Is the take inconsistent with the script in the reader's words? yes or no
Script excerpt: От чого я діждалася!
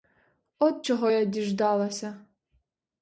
no